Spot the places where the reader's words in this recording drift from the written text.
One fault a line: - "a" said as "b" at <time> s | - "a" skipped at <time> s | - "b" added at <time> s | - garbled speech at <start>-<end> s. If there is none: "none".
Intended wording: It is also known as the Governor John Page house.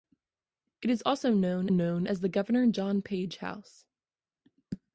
- "known" added at 1.7 s